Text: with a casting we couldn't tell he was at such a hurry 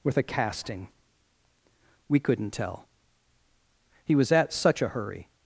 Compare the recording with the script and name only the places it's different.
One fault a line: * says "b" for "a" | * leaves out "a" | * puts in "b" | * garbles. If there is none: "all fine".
all fine